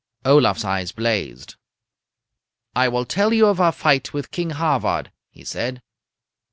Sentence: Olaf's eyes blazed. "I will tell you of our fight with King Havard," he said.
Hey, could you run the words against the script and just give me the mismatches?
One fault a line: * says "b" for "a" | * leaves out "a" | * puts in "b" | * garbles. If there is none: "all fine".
all fine